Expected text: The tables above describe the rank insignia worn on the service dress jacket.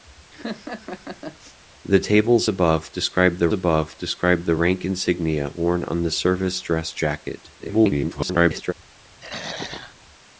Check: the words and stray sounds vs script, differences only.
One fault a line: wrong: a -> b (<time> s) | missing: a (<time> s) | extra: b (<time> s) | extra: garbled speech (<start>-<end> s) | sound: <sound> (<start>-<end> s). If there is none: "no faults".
sound: laugh (0.3-1.6 s)
extra: above describe the (3.5 s)
extra: garbled speech (7.6-8.7 s)
sound: throat clearing (9.2-10.0 s)